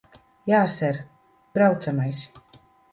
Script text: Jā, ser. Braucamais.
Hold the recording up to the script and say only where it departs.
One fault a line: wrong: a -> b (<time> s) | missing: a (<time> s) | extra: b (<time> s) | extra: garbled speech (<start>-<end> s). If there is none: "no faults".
no faults